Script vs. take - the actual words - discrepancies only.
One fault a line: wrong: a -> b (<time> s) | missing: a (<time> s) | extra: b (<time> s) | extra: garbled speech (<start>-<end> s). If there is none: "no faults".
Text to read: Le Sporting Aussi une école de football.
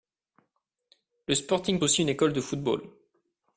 no faults